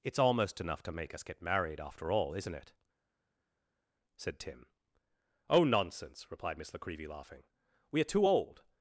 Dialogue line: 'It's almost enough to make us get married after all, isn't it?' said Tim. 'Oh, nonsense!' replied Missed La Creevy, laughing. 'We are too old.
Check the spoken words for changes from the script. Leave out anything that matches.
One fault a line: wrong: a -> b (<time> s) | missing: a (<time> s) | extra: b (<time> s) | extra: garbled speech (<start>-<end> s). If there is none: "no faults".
wrong: Missed -> Miss (6.6 s)